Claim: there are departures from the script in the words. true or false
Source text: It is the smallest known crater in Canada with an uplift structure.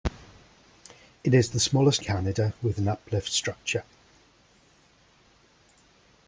true